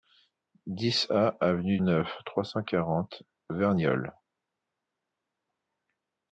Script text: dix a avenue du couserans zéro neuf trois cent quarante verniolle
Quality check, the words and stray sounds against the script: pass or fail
fail